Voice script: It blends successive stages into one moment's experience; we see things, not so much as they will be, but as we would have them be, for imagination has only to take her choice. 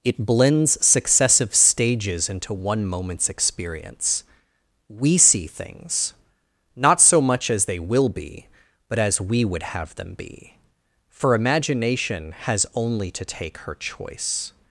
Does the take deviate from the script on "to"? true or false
false